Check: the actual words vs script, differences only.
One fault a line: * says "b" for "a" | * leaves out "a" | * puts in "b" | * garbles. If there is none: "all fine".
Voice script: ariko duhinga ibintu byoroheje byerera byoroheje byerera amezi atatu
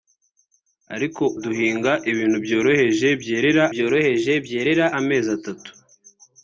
all fine